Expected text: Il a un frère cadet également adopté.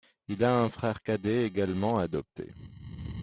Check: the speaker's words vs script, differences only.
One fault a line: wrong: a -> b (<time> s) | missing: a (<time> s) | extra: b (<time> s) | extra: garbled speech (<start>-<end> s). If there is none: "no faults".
no faults